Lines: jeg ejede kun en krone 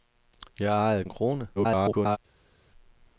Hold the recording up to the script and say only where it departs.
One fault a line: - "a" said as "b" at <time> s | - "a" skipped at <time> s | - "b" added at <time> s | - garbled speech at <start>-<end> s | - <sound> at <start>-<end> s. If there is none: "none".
- "kun" skipped at 1.1 s
- garbled speech at 1.6-2.2 s